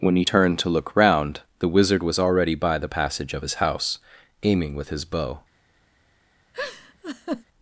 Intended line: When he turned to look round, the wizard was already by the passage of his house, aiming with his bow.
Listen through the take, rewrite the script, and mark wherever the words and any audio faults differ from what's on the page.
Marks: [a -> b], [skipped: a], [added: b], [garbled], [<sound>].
When he turned to look round, the wizard was already by the passage of his house, aiming with his bow. [laugh]